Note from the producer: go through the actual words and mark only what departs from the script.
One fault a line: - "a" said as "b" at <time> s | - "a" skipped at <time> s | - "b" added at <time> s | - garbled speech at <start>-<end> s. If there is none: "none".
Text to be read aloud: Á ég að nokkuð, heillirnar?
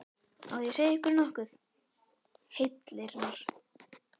- "segja ykkur" added at 0.7 s